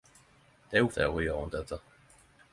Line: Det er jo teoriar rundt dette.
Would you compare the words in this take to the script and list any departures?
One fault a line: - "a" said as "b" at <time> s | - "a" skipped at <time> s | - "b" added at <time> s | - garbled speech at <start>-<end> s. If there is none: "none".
none